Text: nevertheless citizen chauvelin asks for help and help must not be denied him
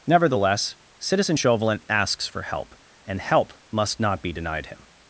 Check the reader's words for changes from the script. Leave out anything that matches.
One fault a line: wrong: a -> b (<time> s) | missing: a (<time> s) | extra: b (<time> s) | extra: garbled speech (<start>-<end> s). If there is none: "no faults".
no faults